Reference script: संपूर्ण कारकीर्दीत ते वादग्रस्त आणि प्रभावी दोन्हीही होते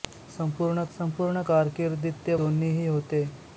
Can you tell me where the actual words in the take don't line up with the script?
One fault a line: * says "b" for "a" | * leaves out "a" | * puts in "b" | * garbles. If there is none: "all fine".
* puts in "संपूर्ण"
* leaves out "वादग्रस्त आणि प्रभावी"